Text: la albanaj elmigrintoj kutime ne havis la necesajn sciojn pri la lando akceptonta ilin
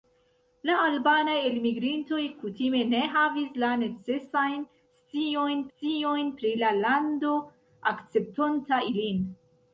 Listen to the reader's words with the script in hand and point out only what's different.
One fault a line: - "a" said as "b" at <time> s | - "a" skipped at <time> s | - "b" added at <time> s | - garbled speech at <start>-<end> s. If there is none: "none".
- "sciojn" added at 5.7 s